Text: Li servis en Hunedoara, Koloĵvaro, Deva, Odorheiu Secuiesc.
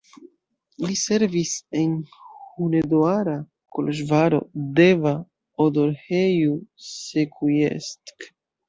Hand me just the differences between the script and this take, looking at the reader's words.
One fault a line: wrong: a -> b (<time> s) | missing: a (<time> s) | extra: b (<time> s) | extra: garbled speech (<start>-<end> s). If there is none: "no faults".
no faults